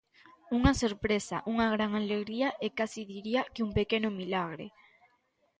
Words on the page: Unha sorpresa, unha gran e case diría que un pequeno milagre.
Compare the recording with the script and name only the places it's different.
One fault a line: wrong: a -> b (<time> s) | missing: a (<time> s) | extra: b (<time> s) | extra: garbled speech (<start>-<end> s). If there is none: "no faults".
extra: alegría (2.0 s)